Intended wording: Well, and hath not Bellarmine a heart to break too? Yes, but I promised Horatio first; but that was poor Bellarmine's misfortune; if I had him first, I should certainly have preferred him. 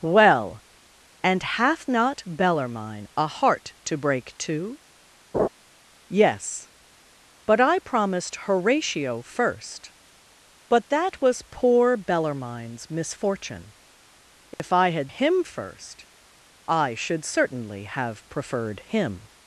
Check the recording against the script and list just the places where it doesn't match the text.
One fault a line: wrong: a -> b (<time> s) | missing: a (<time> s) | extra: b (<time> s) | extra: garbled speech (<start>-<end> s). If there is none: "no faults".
no faults